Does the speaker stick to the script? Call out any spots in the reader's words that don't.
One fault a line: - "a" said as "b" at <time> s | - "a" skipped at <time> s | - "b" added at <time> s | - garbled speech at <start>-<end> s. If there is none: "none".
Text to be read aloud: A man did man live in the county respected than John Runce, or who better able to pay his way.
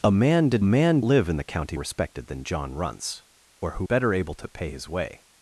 none